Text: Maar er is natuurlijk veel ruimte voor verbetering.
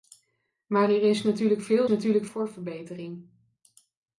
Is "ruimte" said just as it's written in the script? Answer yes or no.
no